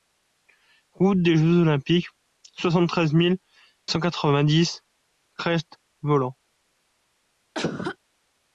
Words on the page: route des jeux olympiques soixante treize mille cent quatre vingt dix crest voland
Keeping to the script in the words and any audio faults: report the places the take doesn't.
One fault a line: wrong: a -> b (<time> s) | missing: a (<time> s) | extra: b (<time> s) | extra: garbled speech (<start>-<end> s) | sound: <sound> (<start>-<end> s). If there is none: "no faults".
sound: cough (7.5-8.0 s)